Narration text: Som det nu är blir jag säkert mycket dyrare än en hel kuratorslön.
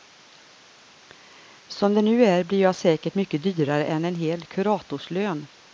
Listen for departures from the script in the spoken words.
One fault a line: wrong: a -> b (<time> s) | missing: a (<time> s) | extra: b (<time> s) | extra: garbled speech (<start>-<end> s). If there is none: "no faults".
no faults